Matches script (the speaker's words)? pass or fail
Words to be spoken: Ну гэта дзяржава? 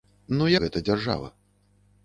pass